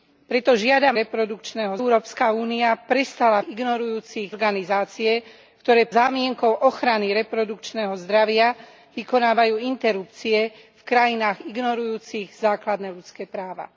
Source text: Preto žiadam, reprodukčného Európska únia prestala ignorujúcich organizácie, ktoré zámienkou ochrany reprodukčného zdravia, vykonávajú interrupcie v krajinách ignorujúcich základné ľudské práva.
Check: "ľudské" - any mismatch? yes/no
no